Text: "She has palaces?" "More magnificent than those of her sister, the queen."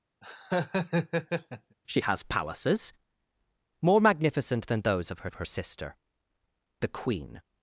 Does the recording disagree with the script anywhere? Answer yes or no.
yes